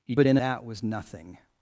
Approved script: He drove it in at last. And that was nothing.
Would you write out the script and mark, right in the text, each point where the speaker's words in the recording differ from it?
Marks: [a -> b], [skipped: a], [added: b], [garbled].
He [skipped: drove] it in [skipped: at last. And] that was nothing.